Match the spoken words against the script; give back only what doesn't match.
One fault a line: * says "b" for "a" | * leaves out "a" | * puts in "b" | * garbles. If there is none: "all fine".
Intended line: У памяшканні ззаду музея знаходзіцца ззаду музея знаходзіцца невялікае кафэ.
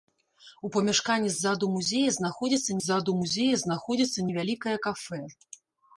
all fine